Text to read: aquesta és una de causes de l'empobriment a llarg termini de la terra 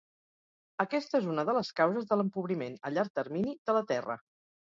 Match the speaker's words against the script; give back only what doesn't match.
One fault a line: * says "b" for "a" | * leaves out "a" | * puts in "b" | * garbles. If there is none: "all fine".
* puts in "les"